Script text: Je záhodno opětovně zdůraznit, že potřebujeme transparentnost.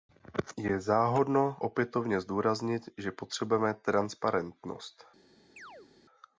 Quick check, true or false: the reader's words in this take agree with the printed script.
true